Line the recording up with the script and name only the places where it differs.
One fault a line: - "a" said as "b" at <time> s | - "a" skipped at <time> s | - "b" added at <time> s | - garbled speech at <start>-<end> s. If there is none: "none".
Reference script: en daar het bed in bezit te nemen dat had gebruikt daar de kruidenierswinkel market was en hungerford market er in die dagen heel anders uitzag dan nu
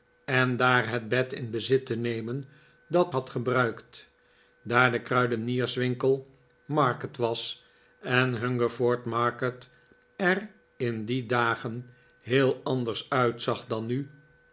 none